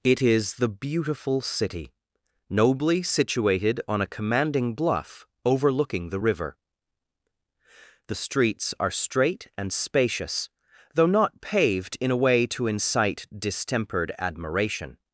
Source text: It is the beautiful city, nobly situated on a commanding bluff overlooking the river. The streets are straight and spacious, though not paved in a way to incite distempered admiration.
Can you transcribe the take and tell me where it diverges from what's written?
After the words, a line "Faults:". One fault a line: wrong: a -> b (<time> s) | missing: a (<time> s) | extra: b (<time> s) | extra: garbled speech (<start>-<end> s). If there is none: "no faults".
It is the beautiful city, nobly situated on a commanding bluff overlooking the river. The streets are straight and spacious, though not paved in a way to incite distempered admiration.
Faults:
no faults